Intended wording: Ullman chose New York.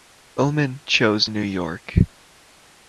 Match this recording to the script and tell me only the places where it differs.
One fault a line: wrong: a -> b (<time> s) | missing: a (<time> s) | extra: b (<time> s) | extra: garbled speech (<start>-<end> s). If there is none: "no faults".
no faults